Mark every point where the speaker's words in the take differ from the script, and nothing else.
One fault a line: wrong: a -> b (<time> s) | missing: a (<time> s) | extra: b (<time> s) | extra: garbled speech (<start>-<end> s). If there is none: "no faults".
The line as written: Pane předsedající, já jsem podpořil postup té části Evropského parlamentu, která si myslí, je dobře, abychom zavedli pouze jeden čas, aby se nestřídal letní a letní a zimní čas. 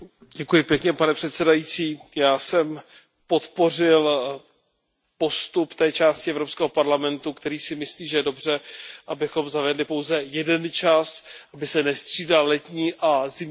extra: že (8.1 s)
missing: letní a (13.3 s)